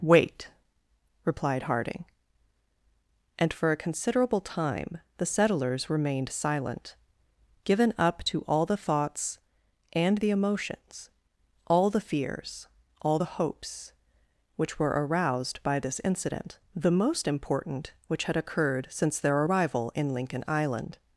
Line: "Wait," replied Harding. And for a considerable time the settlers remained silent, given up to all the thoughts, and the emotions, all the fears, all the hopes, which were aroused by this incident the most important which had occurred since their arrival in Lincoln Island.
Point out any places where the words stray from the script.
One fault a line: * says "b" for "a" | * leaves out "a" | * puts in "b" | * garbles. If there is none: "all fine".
all fine